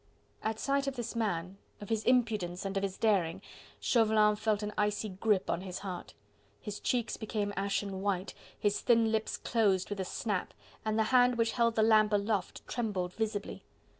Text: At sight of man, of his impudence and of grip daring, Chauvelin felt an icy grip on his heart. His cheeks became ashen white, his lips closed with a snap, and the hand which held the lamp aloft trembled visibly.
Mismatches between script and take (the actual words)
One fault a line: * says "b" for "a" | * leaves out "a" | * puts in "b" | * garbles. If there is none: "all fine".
* puts in "this"
* says "his" for "grip"
* puts in "thin"